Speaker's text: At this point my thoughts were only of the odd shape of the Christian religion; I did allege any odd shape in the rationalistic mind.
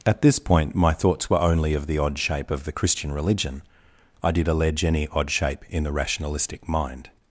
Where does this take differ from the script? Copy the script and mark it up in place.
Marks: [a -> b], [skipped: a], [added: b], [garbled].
At this point my thoughts were only of the odd shape of the Christian religion; I did allege any odd shape in the rationalistic mind.